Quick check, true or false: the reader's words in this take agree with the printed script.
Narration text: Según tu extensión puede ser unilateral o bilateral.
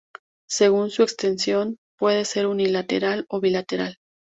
false